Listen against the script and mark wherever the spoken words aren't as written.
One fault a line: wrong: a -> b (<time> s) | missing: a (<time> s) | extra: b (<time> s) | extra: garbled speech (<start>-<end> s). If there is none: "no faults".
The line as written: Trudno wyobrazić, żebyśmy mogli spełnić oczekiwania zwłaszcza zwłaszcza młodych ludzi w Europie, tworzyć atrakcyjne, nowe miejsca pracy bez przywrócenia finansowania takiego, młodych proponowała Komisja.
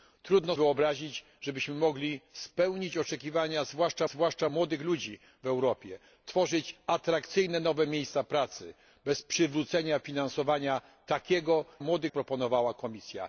no faults